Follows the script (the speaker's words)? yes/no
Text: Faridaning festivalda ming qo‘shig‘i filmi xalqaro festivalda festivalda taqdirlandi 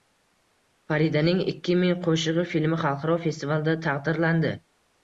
no